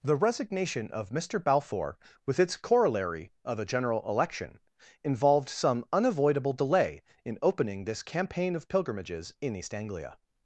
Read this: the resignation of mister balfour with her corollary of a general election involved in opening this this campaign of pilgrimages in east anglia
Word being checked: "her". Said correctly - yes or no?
no